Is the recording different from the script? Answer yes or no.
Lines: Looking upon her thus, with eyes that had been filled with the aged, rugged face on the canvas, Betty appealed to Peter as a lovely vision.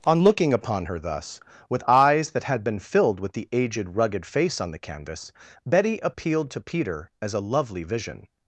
yes